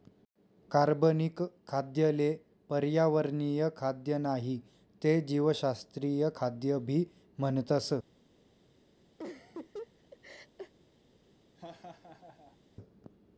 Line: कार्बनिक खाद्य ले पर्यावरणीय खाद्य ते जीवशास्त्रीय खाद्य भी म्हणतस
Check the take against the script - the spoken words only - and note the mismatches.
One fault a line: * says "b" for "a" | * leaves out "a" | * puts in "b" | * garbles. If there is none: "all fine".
* puts in "नाही"